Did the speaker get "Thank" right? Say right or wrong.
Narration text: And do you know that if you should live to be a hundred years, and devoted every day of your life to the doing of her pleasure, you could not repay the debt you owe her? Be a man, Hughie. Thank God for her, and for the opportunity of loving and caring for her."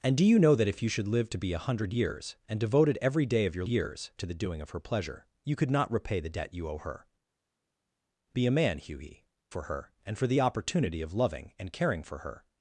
wrong